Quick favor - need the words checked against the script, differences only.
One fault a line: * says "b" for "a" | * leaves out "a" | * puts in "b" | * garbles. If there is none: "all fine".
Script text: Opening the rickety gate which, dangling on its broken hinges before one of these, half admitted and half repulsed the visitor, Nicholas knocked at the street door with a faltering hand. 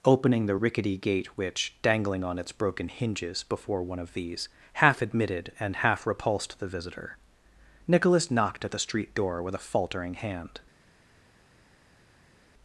all fine